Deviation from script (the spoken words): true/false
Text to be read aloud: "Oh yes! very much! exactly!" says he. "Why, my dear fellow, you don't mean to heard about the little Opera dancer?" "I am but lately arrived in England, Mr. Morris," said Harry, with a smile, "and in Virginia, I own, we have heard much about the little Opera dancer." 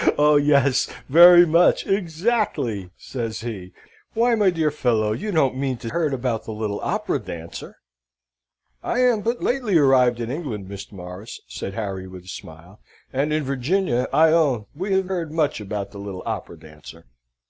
false